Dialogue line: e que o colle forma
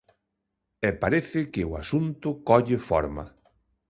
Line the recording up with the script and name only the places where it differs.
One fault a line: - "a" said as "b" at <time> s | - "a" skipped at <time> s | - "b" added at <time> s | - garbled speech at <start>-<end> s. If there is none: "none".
- "parece" added at 1.0 s
- "asunto" added at 1.8 s